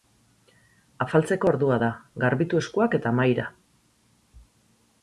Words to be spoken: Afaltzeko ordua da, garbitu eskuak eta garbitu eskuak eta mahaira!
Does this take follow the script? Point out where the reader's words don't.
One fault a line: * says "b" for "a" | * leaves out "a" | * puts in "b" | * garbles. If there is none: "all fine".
* leaves out "garbitu eskuak eta"